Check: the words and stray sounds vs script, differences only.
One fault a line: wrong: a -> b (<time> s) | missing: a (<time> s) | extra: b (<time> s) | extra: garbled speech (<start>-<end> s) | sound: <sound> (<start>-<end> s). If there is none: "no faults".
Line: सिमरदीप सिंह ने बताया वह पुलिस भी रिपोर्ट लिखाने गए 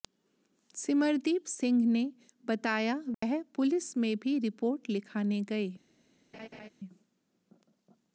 sound: dropout (3.1-3.2 s)
extra: में (4.0 s)
sound: laugh (6.3-6.7 s)